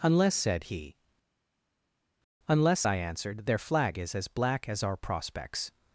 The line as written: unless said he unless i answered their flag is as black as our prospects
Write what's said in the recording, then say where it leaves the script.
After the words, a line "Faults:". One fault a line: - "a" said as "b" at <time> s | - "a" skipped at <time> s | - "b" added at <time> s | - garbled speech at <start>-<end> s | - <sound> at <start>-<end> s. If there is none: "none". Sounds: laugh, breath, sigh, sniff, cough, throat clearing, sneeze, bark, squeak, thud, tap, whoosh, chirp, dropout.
unless said he unless i answered their flag is as black as our prospects
Faults:
none